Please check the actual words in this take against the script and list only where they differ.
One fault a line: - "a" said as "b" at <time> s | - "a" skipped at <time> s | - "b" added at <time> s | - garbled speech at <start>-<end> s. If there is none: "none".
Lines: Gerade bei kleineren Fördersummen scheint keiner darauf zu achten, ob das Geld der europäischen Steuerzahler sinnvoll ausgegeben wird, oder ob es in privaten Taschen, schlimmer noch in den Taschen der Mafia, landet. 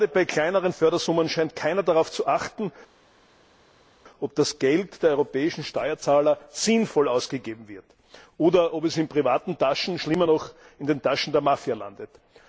none